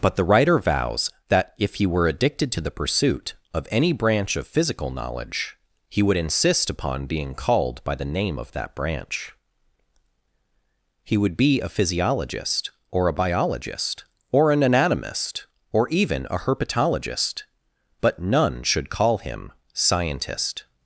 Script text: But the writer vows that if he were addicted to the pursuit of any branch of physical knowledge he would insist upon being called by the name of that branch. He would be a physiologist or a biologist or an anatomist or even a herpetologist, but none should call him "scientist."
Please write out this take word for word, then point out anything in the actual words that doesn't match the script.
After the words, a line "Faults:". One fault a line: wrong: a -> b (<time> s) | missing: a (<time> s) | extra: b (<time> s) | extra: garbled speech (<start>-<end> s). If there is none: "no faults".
But the writer vows that if he were addicted to the pursuit of any branch of physical knowledge he would insist upon being called by the name of that branch. He would be a physiologist or a biologist or an anatomist or even a herpetologist, but none should call him "scientist."
Faults:
no faults